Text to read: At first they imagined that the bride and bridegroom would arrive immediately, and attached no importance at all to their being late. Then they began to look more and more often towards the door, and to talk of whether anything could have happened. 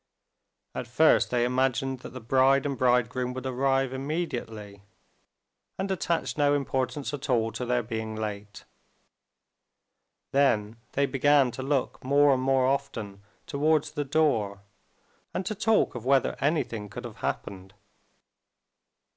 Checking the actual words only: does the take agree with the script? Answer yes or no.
yes